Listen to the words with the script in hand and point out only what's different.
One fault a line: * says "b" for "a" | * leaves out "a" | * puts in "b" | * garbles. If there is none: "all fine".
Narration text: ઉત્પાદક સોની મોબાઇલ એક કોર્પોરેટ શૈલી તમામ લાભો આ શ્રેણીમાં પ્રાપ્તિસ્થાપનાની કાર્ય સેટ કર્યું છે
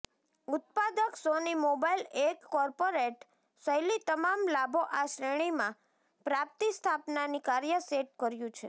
all fine